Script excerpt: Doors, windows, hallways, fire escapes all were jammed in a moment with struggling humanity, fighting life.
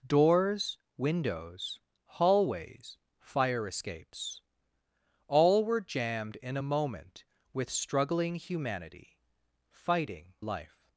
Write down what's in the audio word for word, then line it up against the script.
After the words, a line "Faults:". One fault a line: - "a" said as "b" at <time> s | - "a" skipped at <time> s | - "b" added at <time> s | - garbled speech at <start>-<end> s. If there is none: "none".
Doors, windows, hallways, fire escapes all were jammed in a moment with struggling humanity, fighting life.
Faults:
none